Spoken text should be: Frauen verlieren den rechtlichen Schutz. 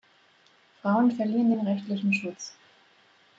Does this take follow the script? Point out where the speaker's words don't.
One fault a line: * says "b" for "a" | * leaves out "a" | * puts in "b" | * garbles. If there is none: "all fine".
all fine